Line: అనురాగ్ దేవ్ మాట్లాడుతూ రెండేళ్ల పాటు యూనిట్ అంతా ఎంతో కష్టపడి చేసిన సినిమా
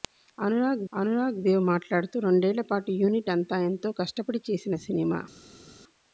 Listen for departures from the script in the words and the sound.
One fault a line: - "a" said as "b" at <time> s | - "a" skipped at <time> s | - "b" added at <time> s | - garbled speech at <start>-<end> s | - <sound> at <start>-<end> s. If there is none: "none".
- "అనురాగ్" added at 0.9 s